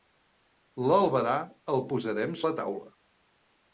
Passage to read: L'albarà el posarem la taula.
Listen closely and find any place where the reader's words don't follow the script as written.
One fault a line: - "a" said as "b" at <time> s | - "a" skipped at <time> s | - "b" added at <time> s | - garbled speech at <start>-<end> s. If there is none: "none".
none